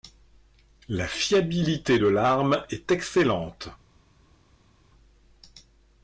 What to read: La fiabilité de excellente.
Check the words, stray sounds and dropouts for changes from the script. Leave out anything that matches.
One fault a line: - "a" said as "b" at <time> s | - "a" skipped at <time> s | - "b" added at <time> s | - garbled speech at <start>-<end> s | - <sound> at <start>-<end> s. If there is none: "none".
- "l'arme est" added at 2.0 s